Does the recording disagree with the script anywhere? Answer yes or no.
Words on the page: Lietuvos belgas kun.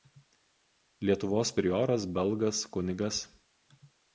yes